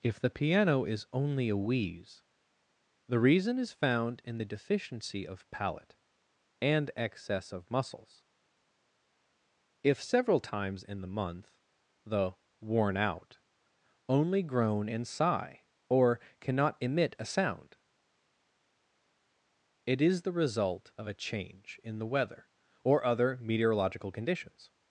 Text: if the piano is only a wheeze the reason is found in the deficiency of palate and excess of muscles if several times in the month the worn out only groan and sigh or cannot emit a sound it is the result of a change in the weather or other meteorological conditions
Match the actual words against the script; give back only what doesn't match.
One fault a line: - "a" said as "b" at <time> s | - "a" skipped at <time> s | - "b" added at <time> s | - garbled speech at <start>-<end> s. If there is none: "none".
none